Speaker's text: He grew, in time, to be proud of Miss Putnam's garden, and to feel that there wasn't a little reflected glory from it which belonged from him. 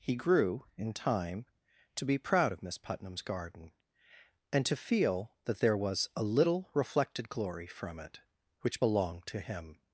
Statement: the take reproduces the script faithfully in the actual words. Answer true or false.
false